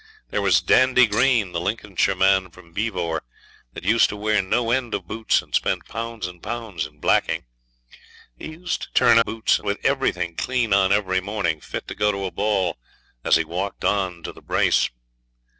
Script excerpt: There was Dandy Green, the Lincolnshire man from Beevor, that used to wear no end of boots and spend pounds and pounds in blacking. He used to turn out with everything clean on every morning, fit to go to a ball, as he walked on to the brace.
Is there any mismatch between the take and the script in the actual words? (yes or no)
yes